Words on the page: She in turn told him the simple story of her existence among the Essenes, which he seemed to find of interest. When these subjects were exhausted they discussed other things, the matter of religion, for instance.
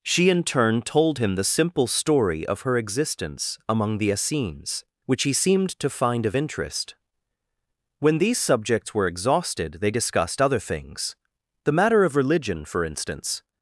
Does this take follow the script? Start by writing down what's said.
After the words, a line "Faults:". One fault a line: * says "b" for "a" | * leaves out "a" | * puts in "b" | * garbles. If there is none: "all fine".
She in turn told him the simple story of her existence among the Essenes, which he seemed to find of interest. When these subjects were exhausted they discussed other things, the matter of religion, for instance.
Faults:
all fine